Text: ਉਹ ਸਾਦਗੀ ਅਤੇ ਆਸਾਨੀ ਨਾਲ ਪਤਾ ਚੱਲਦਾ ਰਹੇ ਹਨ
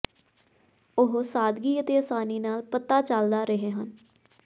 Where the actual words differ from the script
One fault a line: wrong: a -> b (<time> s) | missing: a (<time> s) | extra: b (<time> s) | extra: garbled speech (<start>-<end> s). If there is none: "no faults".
no faults